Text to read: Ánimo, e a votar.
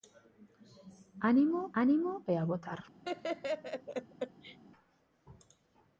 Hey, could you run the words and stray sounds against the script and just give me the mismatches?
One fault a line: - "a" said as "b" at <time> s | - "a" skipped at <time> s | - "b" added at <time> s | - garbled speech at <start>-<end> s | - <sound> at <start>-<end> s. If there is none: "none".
- "ánimo" added at 1.8 s
- laugh at 3.0-4.6 s